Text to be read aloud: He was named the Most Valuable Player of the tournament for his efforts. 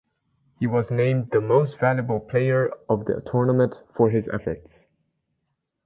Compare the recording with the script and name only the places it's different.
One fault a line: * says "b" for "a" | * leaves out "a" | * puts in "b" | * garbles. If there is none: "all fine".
all fine